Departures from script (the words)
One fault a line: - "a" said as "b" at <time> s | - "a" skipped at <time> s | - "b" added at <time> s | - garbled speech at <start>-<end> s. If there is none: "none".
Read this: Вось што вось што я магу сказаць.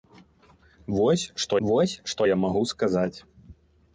none